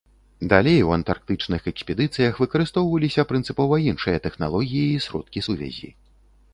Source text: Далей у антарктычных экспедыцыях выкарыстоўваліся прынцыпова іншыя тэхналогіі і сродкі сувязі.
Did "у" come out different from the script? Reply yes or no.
no